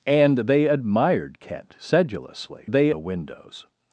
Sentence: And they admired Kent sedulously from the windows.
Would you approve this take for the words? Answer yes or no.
no